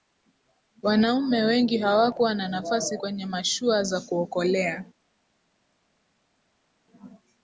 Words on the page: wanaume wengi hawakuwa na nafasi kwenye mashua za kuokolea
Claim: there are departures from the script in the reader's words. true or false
false